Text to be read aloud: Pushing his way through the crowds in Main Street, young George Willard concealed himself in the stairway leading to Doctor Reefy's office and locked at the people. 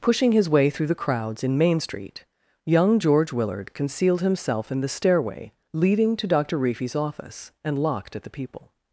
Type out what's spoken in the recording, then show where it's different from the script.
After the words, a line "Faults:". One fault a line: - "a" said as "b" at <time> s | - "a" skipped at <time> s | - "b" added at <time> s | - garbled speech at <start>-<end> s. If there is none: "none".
Pushing his way through the crowds in Main Street, young George Willard concealed himself in the stairway leading to Doctor Reefy's office and locked at the people.
Faults:
none